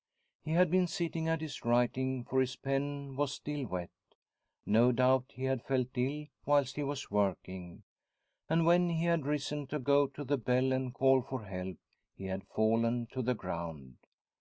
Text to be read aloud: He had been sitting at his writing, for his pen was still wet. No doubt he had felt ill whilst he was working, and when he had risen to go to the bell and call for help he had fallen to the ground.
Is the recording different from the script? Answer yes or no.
no